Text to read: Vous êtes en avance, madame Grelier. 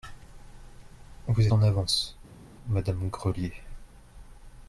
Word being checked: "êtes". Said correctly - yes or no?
no